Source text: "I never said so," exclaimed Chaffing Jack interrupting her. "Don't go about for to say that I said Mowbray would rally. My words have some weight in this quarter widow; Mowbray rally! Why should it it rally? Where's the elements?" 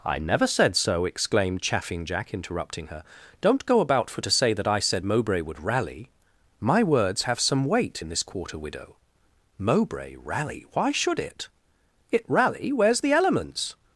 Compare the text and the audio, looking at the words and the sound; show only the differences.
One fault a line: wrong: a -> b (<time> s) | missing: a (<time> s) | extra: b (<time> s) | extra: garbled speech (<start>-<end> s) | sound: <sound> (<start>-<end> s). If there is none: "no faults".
no faults